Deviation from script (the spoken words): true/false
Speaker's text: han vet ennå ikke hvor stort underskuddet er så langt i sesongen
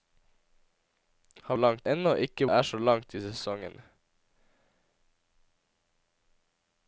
true